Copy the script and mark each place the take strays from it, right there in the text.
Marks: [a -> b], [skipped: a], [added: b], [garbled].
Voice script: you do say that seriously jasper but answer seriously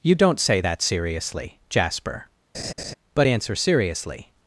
you [do -> don't] say that seriously jasper but answer seriously